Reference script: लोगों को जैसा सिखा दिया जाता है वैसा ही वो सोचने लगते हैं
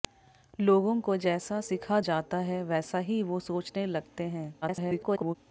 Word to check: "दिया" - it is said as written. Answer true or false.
false